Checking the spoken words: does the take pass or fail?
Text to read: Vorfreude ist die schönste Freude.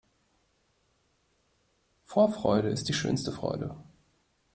pass